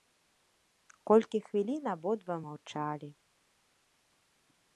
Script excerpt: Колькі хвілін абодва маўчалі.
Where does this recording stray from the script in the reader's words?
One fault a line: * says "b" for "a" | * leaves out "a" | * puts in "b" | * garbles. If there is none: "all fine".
all fine